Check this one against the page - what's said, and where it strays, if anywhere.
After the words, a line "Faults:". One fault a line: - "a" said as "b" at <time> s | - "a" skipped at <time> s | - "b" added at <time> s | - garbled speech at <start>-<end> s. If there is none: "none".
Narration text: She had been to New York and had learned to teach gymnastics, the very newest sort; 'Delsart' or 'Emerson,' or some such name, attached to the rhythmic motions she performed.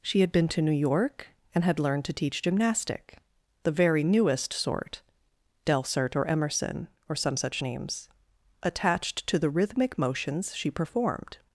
She had been to New York and had learned to teach gymnastic, the very newest sort; 'Delsart' or 'Emerson,' or some such names, attached to the rhythmic motions she performed.
Faults:
- "gymnastics" said as "gymnastic" at 2.4 s
- "name" said as "names" at 7.6 s